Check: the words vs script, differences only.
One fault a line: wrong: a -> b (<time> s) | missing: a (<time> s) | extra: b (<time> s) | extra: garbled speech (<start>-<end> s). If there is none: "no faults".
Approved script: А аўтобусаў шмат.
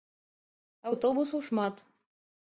no faults